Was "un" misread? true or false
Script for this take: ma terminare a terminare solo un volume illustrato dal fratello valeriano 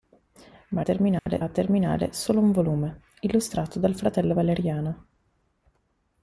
false